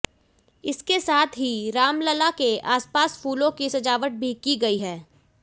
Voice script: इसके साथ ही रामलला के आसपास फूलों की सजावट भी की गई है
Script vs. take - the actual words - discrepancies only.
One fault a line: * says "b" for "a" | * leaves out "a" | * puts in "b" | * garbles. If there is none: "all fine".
all fine